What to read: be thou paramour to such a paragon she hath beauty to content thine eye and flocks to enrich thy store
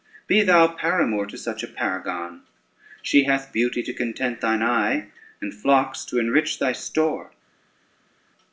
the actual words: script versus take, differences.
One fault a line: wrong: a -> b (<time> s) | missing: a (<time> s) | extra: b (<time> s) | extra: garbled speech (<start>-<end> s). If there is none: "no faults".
no faults